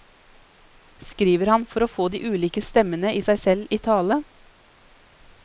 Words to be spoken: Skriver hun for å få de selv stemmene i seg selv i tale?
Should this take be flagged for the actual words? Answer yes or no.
yes